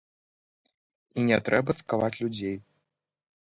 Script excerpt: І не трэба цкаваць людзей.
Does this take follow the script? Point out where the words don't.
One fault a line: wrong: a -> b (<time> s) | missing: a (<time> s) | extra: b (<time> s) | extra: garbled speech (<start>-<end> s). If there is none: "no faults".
no faults